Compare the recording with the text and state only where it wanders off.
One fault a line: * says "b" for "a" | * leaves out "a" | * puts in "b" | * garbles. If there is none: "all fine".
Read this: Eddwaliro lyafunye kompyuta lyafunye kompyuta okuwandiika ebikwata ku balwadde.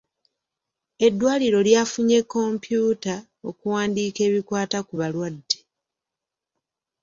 * leaves out "lyafunye kompyuta"